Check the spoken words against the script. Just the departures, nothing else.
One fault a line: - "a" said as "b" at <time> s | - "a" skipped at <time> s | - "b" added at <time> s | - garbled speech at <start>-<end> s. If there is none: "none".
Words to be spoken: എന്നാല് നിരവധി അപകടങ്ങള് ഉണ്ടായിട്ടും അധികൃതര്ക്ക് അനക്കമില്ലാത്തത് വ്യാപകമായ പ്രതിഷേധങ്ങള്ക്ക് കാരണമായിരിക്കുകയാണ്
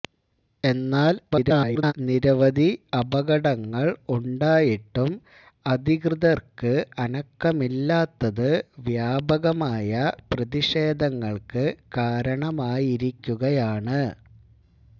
- garbled speech at 1.3-1.9 s